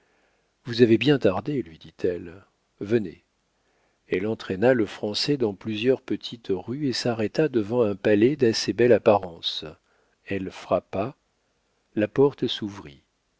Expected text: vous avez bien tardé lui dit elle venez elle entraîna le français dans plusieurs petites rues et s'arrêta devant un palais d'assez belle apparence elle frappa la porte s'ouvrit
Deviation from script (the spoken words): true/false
false